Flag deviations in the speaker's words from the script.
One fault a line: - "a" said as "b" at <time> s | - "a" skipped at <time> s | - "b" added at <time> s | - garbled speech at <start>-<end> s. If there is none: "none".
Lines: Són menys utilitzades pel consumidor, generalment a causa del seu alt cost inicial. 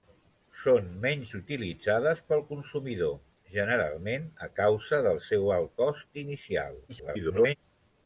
- garbled speech at 6.9-7.6 s